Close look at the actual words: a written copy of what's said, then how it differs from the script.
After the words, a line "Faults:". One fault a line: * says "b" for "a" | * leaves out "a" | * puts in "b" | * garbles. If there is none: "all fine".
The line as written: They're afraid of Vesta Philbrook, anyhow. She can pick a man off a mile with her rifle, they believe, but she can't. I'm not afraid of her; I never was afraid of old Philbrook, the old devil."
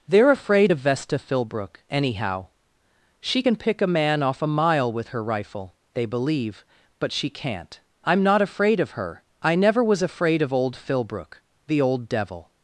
They're afraid of Vesta Philbrook, anyhow. She can pick a man off a mile with her rifle, they believe, but she can't. I'm not afraid of her; I never was afraid of old Philbrook, the old devil."
Faults:
all fine